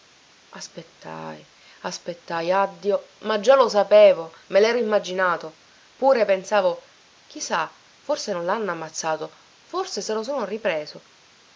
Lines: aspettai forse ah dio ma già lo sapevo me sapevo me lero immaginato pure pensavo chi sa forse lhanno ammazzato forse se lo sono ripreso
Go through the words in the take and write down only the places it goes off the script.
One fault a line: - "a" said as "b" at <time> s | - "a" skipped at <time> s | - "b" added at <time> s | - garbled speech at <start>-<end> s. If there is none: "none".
- "forse" said as "aspettai" at 1.8 s
- "sapevo me" skipped at 4.6 s
- "non" added at 8.3 s